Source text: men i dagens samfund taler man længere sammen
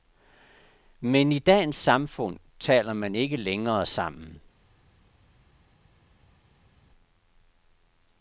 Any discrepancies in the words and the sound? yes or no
yes